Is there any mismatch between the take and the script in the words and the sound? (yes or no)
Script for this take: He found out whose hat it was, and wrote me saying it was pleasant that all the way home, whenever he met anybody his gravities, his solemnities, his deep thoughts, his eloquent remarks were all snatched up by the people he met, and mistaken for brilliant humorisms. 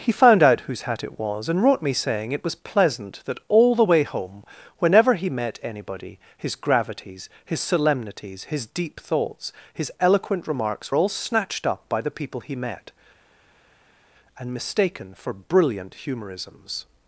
yes